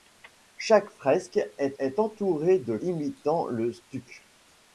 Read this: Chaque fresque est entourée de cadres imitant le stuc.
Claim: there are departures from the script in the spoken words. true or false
true